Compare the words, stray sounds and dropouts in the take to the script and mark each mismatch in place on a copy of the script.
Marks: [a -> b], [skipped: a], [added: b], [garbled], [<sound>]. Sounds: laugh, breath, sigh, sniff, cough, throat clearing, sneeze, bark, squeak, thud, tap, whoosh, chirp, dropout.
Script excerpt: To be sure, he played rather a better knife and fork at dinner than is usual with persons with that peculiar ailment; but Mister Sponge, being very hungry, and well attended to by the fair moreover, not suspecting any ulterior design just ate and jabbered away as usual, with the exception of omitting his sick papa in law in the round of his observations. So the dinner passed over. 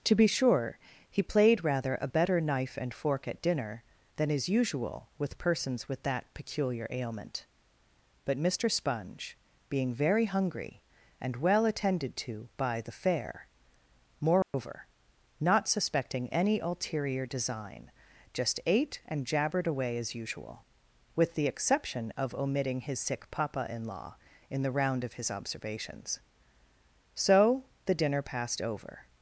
To be sure, he played rather a better knife and fork at dinner than is usual with persons with that peculiar ailment; but Mister Sponge, being very hungry, and well attended to by the fair moreover, [dropout] not suspecting any ulterior design just ate and jabbered away as usual, with the exception of omitting his sick papa in law in the round of his observations. So the dinner passed over.